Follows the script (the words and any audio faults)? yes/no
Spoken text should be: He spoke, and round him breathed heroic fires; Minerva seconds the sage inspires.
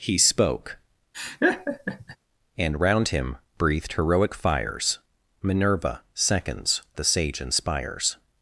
no